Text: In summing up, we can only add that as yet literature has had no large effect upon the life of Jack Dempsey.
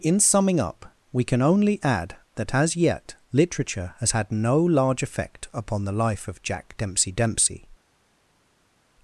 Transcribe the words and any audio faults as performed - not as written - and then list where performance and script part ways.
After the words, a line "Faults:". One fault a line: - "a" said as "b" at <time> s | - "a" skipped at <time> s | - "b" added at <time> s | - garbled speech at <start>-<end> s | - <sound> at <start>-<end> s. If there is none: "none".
In summing up, we can only add that as yet literature has had no large effect upon the life of Jack Dempsey Dempsey.
Faults:
- "Dempsey" added at 7.1 s